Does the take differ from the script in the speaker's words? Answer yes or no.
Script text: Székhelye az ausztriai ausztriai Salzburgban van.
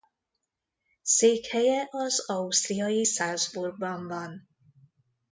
yes